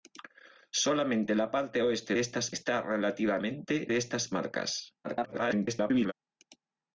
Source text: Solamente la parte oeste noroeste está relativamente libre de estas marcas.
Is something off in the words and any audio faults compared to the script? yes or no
yes